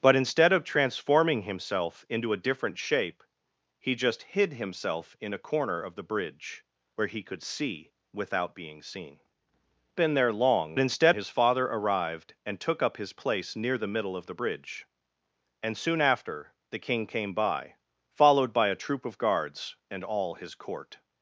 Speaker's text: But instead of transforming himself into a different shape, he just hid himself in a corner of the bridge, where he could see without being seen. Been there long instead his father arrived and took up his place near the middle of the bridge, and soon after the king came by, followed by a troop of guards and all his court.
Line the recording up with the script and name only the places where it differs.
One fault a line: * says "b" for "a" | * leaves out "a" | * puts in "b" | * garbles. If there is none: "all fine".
all fine